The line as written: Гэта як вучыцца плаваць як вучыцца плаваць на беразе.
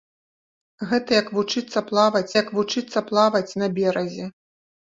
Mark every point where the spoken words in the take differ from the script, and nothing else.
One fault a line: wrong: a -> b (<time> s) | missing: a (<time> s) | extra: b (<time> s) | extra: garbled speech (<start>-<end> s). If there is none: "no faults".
no faults